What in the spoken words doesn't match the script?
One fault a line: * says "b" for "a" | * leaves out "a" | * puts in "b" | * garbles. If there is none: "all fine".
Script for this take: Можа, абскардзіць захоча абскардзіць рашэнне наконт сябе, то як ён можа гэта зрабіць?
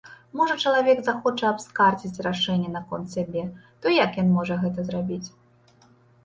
* says "чалавек" for "абскардзіць"